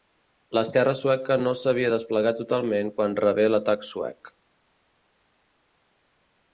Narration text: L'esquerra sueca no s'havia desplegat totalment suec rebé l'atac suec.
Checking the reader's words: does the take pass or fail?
fail